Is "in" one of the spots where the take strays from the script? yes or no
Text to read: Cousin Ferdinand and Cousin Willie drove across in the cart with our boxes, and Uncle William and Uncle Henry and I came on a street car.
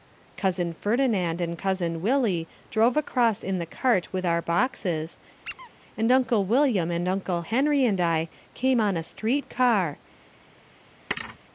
no